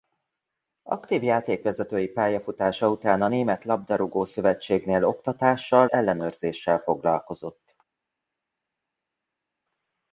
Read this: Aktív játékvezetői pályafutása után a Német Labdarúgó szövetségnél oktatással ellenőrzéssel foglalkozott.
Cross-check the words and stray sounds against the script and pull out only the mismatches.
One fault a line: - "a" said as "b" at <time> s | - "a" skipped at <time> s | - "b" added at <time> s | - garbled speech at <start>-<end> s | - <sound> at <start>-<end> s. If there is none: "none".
none